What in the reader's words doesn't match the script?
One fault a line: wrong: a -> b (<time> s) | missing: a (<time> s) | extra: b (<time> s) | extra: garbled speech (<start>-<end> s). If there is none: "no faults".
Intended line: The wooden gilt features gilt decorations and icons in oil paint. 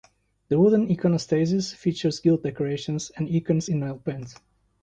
wrong: gilt -> iconostasis (0.9 s)